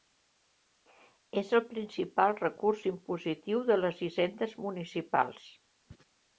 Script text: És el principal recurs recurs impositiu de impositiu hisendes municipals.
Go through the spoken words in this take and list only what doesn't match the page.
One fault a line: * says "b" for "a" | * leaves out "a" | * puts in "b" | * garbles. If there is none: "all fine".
* leaves out "recurs"
* says "les" for "impositiu"